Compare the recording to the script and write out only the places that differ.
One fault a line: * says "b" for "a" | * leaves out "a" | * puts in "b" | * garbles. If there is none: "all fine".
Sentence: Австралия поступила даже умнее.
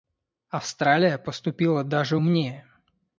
all fine